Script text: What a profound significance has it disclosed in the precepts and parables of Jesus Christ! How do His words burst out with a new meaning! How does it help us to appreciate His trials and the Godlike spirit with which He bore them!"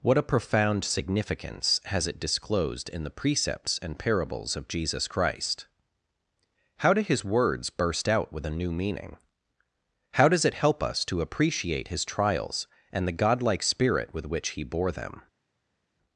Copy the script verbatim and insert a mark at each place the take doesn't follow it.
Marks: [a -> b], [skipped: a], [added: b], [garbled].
What a profound significance has it disclosed in the precepts and parables of Jesus Christ! How do His words burst out with a new meaning! How does it help us to appreciate His trials and the Godlike spirit with which He bore them!"